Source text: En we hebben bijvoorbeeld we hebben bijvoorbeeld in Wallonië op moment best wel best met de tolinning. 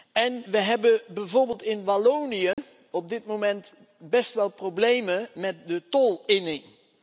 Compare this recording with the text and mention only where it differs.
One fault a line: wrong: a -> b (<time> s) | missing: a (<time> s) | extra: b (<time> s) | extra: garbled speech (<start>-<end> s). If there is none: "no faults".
missing: we hebben bijvoorbeeld (1.6 s)
extra: dit (3.1 s)
wrong: best -> problemen (4.5 s)